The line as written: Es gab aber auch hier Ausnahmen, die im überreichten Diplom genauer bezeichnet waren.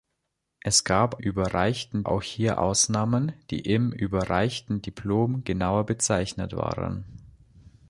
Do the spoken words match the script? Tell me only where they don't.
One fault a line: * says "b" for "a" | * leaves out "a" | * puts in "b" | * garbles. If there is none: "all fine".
* says "überreichten" for "aber"